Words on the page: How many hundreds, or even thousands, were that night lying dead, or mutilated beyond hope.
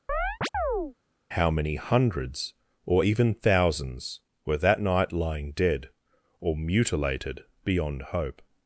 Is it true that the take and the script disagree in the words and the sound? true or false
true